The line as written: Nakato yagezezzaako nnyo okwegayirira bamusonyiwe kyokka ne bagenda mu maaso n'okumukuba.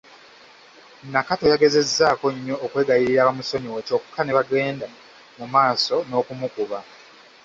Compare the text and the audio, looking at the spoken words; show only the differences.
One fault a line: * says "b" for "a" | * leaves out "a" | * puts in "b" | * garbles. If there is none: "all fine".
all fine